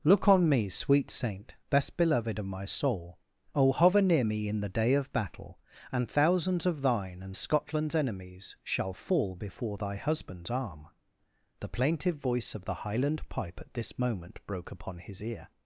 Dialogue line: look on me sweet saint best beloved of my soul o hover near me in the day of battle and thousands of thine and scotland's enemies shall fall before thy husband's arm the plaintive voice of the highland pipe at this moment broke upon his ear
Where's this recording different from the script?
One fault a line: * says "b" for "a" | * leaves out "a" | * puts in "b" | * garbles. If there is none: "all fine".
all fine